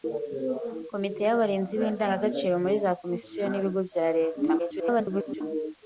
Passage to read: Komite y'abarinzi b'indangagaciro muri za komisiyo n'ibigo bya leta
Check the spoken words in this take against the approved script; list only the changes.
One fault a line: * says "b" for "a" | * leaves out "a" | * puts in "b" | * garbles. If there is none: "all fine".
* garbles